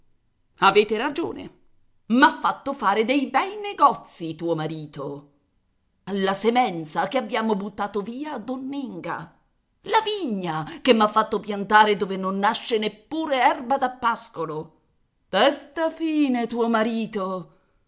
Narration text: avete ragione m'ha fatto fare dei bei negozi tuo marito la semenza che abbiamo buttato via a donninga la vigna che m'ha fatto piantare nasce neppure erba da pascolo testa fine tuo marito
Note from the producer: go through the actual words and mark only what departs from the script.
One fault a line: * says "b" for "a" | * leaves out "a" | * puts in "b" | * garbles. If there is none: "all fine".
* puts in "dove non"